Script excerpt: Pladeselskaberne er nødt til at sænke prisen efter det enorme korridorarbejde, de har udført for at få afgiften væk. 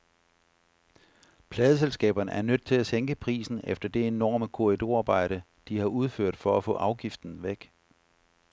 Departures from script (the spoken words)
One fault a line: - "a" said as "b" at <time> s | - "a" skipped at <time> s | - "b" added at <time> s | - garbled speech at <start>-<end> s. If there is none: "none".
none